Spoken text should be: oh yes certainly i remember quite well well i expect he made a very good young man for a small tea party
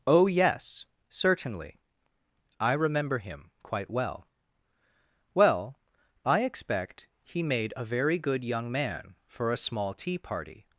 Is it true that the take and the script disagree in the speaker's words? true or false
true